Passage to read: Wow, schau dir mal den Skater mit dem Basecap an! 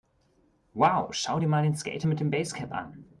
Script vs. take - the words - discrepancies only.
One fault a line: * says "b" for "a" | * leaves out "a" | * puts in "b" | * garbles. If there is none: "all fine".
all fine